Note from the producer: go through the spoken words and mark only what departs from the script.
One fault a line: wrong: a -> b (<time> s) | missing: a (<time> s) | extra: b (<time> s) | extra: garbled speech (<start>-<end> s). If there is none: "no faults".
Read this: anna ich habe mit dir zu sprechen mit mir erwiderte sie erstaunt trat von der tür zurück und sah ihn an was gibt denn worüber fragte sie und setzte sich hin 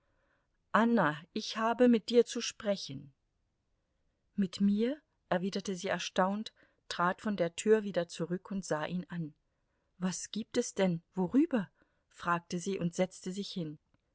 extra: wieder (7.8 s)
extra: es (10.6 s)